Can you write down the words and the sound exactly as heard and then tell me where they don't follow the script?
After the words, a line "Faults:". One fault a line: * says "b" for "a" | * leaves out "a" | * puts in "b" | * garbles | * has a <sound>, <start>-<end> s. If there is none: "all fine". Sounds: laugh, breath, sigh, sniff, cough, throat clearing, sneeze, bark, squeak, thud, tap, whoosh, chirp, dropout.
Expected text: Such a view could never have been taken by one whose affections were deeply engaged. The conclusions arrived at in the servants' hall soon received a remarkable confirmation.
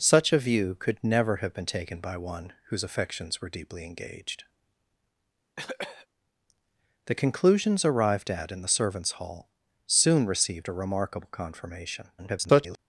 Such a view could never have been taken by one whose affections were deeply engaged. The conclusions arrived at in the servants' hall soon received a remarkable confirmation. [garbled]
Faults:
* has a cough, 5.6-6.1 s
* garbles